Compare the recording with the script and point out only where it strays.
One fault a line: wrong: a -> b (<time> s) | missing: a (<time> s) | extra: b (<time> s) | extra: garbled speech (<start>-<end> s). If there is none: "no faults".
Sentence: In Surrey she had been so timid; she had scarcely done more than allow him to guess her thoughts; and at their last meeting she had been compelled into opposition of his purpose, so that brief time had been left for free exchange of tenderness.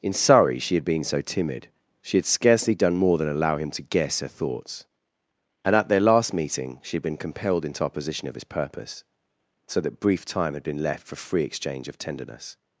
no faults